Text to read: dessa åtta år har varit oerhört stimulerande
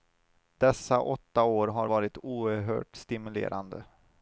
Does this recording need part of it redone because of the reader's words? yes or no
no